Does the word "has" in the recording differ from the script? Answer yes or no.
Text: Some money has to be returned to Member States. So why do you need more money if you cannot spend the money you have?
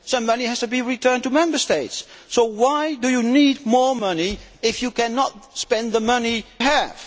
no